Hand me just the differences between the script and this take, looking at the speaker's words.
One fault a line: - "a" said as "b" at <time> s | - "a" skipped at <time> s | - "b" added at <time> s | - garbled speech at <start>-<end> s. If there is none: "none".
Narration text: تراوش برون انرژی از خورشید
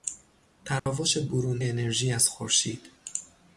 none